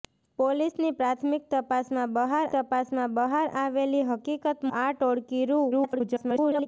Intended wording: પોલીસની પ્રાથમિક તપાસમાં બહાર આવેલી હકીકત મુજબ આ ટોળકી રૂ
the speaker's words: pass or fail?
fail